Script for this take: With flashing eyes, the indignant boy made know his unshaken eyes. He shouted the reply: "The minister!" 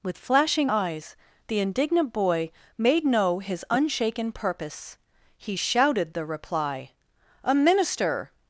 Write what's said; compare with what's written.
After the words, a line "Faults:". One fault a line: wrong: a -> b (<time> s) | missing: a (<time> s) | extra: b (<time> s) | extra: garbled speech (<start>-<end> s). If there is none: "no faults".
With flashing eyes, the indignant boy made know his unshaken purpose. He shouted the reply: "A minister!"
Faults:
wrong: eyes -> purpose (4.3 s)
wrong: The -> A (7.5 s)